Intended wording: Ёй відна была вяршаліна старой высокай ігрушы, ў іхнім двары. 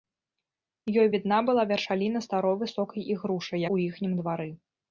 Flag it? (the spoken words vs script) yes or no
no